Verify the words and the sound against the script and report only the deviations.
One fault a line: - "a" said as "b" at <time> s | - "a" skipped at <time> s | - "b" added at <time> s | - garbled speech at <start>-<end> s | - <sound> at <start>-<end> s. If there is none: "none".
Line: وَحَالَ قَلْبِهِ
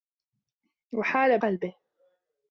none